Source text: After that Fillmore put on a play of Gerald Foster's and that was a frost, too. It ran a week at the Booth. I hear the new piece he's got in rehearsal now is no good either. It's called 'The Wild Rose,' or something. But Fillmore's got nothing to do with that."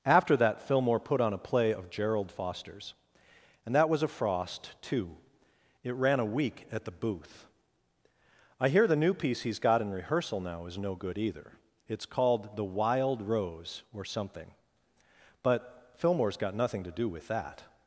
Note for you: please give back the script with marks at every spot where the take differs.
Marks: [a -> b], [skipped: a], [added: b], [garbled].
After that Fillmore put on a play of Gerald Foster's and that was a frost, too. It ran a week at the Booth. I hear the new piece he's got in rehearsal now is no good either. It's called 'The Wild Rose,' or something. But Fillmore's got nothing to do with that."